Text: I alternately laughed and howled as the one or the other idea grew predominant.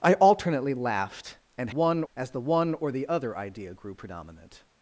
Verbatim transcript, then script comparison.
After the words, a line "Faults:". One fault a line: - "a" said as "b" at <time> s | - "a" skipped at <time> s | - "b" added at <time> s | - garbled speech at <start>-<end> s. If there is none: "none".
I alternately laughed and one as the one or the other idea grew predominant.
Faults:
- "howled" said as "one" at 1.7 s